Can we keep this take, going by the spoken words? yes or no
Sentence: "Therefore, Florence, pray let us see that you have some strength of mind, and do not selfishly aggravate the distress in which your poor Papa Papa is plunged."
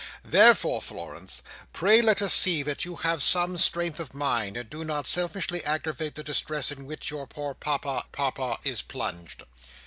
yes